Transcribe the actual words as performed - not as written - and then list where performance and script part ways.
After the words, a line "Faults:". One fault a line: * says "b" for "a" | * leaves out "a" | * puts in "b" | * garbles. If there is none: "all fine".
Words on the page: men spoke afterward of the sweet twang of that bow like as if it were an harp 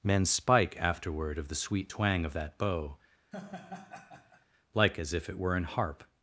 men spike afterward of the sweet twang of that bow like as if it were an harp
Faults:
* says "spike" for "spoke"